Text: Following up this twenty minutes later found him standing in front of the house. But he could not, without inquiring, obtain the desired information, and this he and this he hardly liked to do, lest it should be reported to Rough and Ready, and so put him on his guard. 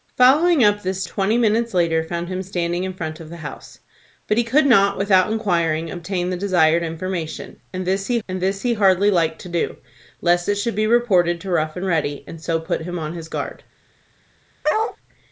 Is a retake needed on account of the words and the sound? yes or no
yes